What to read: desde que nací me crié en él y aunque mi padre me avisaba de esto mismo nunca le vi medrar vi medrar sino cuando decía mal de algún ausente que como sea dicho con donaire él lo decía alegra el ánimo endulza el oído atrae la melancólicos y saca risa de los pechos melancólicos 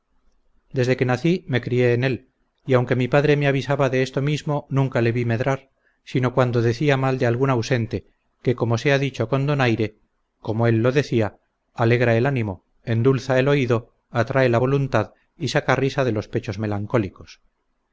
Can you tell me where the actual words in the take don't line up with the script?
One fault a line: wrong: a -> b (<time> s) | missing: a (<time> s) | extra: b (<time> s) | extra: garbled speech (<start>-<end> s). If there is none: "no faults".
missing: vi medrar (5.7 s)
extra: como (10.4 s)
wrong: melancólicos -> voluntad (14.5 s)